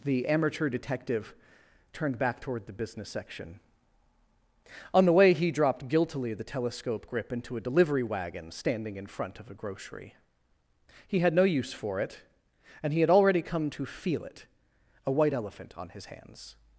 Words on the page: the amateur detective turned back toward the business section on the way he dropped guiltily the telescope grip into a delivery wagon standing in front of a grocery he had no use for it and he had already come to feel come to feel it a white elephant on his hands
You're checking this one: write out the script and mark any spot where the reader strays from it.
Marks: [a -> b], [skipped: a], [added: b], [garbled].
the amateur detective turned back toward the business section on the way he dropped guiltily the telescope grip into a delivery wagon standing in front of a grocery he had no use for it and he had already come to feel [skipped: come to feel] it a white elephant on his hands